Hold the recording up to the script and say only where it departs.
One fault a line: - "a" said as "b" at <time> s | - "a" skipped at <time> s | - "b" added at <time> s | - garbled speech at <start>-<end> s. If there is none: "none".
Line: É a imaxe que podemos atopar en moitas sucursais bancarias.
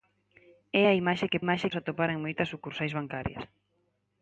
- "podemos" said as "imaxe" at 1.4 s